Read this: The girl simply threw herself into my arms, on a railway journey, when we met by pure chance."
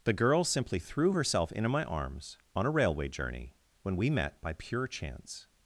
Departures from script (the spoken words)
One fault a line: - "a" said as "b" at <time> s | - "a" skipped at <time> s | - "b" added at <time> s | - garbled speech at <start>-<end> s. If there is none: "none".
none